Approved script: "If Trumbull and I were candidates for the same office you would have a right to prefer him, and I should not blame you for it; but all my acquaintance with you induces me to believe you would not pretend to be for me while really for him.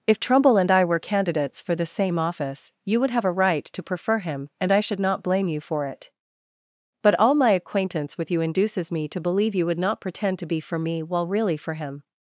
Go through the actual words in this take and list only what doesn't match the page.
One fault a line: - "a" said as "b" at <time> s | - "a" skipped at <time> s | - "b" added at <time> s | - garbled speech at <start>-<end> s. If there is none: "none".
none